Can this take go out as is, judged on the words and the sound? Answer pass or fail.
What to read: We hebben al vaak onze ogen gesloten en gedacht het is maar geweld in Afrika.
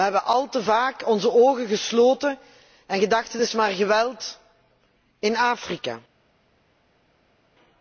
fail